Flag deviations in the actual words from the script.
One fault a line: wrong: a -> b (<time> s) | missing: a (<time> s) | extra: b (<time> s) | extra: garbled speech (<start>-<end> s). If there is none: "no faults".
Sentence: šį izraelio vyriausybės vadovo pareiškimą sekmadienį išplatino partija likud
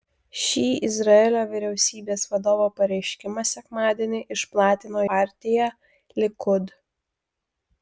no faults